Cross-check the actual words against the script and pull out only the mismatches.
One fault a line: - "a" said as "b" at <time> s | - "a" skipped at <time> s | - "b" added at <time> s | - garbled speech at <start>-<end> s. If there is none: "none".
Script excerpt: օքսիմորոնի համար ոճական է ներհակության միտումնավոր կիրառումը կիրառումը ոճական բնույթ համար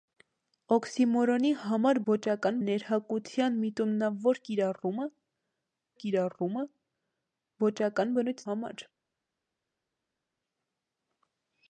none